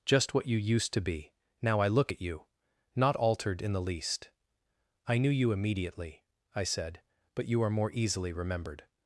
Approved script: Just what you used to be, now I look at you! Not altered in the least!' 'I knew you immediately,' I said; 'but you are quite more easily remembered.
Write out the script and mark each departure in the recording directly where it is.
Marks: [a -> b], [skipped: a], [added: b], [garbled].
Just what you used to be, now I look at you! Not altered in the least!' 'I knew you immediately,' I said; 'but you are [skipped: quite] more easily remembered.